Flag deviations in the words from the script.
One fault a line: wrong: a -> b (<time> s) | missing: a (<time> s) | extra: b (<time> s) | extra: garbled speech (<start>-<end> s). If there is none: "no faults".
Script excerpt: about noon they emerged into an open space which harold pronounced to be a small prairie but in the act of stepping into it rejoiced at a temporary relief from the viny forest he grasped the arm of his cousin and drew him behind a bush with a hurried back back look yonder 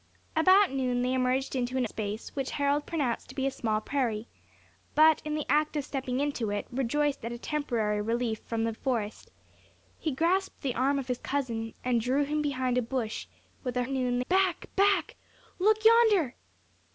missing: open (1.9 s)
missing: viny (8.7 s)
wrong: hurried -> noon (13.9 s)